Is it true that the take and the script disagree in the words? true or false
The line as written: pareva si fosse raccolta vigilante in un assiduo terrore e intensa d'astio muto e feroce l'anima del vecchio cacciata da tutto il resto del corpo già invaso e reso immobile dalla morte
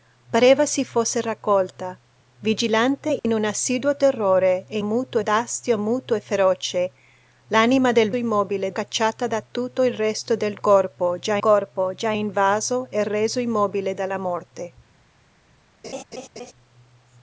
true